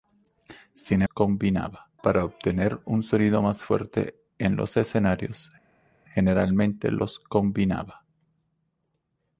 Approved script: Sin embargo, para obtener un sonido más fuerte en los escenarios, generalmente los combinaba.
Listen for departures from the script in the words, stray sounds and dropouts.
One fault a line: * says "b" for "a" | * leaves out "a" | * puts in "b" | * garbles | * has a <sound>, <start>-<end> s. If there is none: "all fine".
* says "combinaba" for "embargo"